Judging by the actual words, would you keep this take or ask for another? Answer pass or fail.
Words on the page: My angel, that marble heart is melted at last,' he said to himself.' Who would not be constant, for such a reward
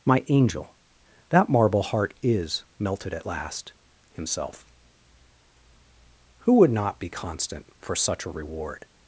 fail